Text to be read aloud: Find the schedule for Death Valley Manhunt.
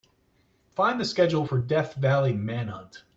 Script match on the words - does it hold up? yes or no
yes